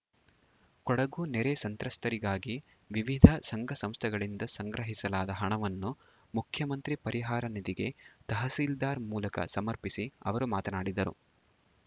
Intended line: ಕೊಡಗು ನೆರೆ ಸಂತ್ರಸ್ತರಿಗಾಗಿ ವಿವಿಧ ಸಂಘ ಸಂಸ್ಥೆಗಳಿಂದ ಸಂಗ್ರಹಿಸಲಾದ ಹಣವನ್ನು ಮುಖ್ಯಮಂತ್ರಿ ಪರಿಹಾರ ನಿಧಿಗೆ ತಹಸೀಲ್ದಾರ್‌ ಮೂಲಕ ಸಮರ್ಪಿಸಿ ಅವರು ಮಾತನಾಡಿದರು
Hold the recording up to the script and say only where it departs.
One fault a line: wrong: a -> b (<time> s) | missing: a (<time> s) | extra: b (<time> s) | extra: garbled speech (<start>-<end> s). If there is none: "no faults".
no faults